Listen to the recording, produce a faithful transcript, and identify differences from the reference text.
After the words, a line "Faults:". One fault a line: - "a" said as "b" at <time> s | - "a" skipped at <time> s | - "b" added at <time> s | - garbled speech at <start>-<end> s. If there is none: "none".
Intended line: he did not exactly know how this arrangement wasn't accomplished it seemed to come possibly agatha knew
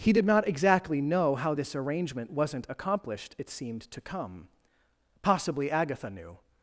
he did not exactly know how this arrangement wasn't accomplished it seemed to come possibly agatha knew
Faults:
none